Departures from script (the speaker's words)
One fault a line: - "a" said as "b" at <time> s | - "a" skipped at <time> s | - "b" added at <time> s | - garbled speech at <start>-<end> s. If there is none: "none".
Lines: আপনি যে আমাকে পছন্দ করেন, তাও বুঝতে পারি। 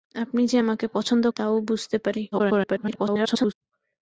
- "করেন" skipped at 1.2 s
- garbled speech at 2.3-3.5 s